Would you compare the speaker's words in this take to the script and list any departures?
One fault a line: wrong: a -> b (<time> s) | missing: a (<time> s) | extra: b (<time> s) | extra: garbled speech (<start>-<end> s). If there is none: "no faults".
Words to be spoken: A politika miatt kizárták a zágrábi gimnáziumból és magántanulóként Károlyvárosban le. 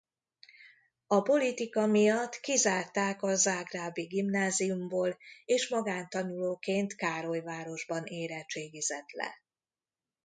extra: érettségizett (8.1 s)